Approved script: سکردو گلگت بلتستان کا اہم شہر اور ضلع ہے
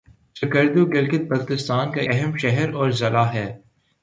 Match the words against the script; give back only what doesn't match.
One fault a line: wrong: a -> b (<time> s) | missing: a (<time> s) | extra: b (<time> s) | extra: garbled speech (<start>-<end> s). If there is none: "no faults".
no faults